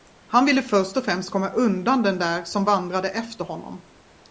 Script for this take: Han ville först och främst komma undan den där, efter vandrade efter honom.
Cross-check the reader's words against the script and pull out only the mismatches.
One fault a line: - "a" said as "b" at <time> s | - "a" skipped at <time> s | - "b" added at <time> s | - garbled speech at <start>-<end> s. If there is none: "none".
- "efter" said as "som" at 2.4 s